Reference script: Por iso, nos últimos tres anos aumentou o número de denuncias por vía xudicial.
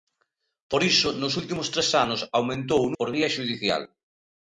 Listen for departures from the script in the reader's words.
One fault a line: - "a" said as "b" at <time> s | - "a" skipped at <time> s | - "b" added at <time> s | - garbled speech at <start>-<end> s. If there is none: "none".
- "número de denuncias" skipped at 2.9 s